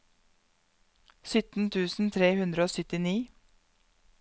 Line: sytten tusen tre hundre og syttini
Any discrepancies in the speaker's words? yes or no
no